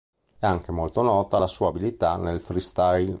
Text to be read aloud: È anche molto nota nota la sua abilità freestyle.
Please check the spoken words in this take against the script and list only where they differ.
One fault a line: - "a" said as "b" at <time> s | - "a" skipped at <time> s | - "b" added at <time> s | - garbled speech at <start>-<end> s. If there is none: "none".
- "nota" skipped at 1.4 s
- "nel" added at 2.2 s